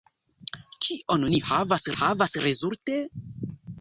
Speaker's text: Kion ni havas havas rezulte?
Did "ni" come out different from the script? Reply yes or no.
no